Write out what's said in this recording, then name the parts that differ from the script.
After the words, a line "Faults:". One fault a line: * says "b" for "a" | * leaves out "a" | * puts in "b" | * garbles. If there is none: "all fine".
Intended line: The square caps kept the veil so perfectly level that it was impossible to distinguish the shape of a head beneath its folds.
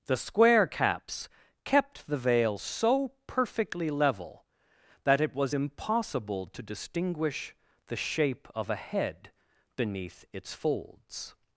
The square caps kept the veil so perfectly level that it was impossible to distinguish the shape of a head beneath its folds.
Faults:
all fine